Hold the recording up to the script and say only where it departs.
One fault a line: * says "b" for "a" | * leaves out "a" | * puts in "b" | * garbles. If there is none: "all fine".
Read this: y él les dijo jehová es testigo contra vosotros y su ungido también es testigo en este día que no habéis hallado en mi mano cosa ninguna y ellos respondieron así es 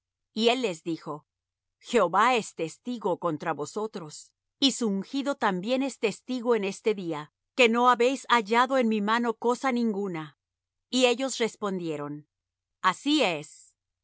all fine